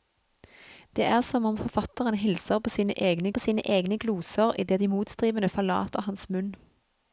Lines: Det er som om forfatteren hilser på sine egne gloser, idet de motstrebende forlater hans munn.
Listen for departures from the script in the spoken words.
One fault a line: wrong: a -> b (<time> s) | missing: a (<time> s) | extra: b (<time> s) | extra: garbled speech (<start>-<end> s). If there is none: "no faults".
extra: på sine egne (3.3 s)